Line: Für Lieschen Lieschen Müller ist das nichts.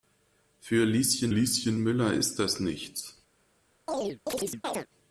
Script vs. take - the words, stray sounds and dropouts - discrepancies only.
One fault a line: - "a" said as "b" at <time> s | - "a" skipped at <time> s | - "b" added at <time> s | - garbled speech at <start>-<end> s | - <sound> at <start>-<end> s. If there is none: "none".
- chirp at 3.9-4.9 s